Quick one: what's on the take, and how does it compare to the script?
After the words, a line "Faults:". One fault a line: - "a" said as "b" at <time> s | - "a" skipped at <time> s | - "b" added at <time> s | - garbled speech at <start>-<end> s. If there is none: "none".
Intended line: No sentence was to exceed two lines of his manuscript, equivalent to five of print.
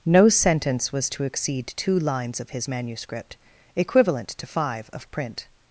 No sentence was to exceed two lines of his manuscript, equivalent to five of print.
Faults:
none